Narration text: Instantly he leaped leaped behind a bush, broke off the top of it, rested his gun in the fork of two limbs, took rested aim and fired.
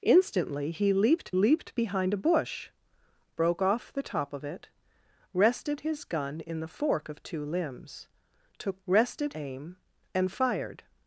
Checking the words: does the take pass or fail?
pass